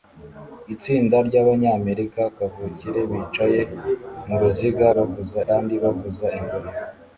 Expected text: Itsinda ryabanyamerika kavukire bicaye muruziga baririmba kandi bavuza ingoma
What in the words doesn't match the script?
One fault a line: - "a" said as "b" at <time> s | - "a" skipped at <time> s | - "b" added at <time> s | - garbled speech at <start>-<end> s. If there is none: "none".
- "baririmba" said as "bavuza" at 4.9 s